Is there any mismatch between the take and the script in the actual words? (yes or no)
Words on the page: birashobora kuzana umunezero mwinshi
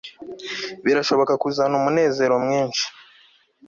no